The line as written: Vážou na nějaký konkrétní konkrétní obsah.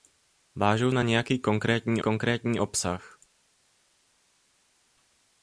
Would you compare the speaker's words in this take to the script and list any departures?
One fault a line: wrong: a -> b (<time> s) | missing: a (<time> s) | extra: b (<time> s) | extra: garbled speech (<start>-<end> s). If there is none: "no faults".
no faults